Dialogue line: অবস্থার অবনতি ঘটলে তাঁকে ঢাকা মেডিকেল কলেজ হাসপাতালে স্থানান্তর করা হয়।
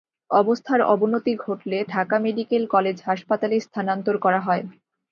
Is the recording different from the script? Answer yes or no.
yes